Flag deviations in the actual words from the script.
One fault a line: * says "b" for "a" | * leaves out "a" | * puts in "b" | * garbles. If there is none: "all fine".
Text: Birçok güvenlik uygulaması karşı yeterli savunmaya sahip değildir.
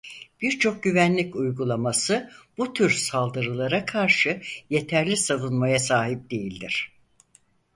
* puts in "bu tür saldırılara"